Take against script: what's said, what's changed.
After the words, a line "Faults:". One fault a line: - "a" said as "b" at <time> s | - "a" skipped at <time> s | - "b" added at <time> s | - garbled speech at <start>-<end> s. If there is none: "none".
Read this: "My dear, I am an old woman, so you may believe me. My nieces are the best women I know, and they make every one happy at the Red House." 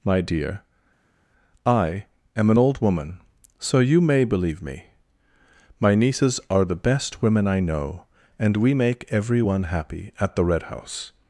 "My dear, I am an old woman, so you may believe me. My nieces are the best women I know, and we make every one happy at the Red House."
Faults:
- "they" said as "we" at 8.6 s